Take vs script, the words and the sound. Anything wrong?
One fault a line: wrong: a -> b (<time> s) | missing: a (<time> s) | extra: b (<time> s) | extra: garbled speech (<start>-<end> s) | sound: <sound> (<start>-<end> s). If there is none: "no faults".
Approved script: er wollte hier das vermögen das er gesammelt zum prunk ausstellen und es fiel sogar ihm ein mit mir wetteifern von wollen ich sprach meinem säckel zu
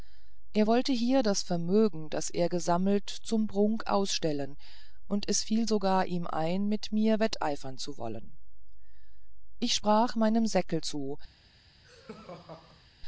wrong: von -> zu (7.8 s)
sound: laugh (11.8-12.9 s)